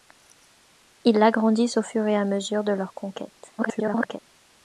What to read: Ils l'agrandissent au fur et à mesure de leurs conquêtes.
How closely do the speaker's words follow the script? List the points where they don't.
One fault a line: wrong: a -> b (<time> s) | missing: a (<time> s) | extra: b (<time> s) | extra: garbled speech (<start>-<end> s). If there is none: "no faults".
extra: garbled speech (3.6-4.2 s)